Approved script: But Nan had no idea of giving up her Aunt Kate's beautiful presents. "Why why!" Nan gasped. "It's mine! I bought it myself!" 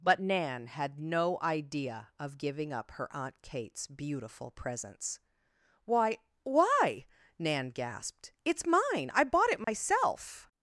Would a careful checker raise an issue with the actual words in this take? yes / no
no